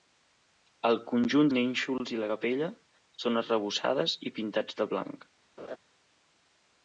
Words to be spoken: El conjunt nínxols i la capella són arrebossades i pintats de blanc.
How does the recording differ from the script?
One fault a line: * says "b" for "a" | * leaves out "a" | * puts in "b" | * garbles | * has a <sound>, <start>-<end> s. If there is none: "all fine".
* has a laugh, 5.6-5.8 s